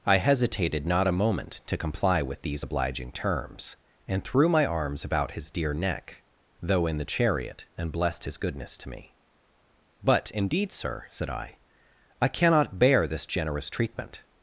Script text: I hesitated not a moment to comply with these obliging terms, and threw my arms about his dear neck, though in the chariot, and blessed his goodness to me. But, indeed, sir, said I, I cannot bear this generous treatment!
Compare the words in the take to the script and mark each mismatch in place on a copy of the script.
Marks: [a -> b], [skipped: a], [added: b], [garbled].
I hesitated not a moment to comply with these obliging terms, and threw my arms about his dear neck, though in the chariot, and blessed his goodness to me. But, indeed, sir, said I, I cannot bear this generous treatment!